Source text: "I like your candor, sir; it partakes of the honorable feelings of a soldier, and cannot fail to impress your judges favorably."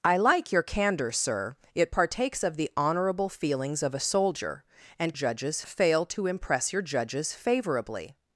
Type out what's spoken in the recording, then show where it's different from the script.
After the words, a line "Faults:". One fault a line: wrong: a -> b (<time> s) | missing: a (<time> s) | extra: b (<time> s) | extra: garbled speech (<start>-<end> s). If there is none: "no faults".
"I like your candor, sir; it partakes of the honorable feelings of a soldier, and judges fail to impress your judges favorably."
Faults:
wrong: cannot -> judges (5.1 s)